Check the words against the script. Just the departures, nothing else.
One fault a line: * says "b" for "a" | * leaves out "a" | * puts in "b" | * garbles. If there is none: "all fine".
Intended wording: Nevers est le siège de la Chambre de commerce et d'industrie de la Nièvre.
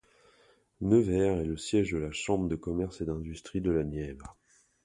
all fine